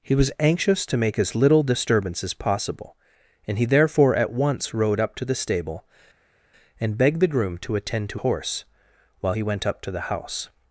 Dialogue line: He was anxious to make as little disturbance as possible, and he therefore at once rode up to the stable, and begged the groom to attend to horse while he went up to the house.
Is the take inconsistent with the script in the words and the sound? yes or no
no